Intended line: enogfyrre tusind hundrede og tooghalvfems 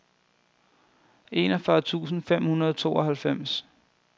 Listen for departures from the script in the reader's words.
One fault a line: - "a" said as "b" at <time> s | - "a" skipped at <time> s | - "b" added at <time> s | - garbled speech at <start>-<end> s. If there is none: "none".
- "fem" added at 2.2 s